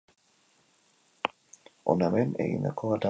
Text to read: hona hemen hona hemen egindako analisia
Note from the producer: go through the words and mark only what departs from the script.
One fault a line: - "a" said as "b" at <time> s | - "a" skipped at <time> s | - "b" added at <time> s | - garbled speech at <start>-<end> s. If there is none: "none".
- "hona hemen" skipped at 2.4 s